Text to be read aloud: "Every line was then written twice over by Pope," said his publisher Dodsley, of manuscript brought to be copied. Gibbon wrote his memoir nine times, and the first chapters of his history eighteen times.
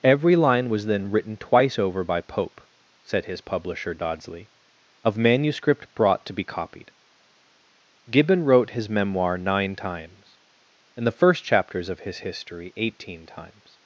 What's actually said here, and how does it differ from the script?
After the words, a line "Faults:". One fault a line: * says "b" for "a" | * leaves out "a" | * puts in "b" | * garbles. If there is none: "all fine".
"Every line was then written twice over by Pope," said his publisher Dodsley, of manuscript brought to be copied. Gibbon wrote his memoir nine times, and the first chapters of his history eighteen times.
Faults:
all fine